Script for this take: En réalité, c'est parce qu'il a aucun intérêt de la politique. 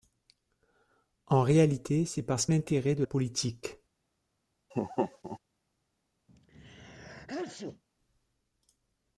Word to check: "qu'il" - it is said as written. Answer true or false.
false